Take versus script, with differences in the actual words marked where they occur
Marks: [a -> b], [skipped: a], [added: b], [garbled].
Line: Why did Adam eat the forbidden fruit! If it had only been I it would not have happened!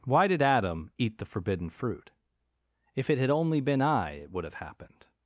Why did Adam eat the forbidden fruit! If it had only been I it would [skipped: not] have happened!